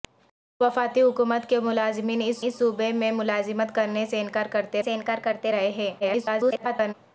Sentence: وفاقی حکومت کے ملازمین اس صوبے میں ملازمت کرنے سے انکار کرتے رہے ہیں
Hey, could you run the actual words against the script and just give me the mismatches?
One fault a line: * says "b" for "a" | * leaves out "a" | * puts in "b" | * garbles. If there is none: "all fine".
* puts in "اس"
* puts in "سے انکار کرتے"
* garbles